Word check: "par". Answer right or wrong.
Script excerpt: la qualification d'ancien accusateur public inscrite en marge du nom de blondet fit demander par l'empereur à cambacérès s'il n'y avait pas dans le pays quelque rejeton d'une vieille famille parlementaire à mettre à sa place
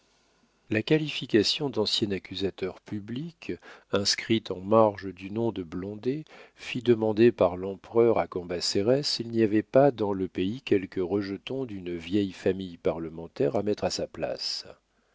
right